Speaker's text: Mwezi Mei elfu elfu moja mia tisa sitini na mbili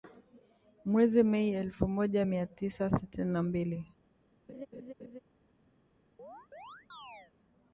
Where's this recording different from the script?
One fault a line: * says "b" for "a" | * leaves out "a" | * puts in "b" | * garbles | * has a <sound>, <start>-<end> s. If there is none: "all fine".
* leaves out "elfu"
* has a laugh, 4.5-5.2 s
* has a chirp, 6.2-7.3 s